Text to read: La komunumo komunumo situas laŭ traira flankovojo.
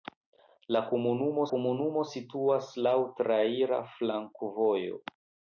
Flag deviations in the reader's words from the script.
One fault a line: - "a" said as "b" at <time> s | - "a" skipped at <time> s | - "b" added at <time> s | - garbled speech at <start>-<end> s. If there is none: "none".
none